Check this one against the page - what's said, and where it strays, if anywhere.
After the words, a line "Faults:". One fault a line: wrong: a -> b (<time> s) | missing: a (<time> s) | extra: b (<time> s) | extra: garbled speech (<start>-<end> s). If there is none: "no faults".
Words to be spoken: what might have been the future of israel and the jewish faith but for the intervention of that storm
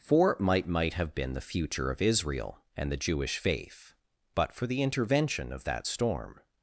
for might might have been the future of israel and the jewish faith but for the intervention of that storm
Faults:
wrong: what -> for might (0.0 s)